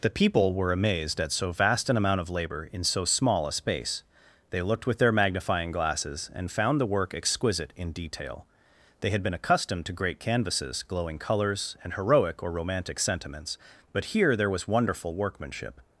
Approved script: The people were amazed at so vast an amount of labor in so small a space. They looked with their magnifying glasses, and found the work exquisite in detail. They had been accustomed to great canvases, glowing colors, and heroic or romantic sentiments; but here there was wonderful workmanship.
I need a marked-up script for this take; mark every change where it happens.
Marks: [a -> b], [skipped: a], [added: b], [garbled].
The people were amazed at so vast an amount of labor in so small a space. They looked with their magnifying glasses, and found the work exquisite in detail. They had been accustomed to great canvases, glowing colors, and heroic or romantic sentiments; but here there was wonderful workmanship.